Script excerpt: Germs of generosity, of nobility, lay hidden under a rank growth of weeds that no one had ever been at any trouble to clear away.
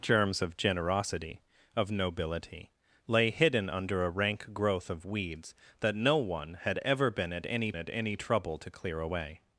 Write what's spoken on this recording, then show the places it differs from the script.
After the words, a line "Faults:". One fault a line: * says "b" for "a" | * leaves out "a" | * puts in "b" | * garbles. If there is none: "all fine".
Germs of generosity, of nobility, lay hidden under a rank growth of weeds that no one had ever been at any at any trouble to clear away.
Faults:
* puts in "at any"